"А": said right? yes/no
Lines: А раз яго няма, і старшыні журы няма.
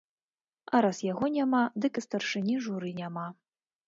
yes